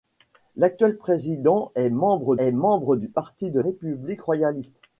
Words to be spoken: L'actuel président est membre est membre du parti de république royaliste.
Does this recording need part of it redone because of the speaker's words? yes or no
no